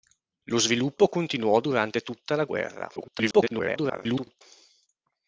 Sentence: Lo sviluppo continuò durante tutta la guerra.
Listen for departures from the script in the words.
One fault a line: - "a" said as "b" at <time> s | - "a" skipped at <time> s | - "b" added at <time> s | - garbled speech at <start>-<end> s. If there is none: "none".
- garbled speech at 3.0-4.4 s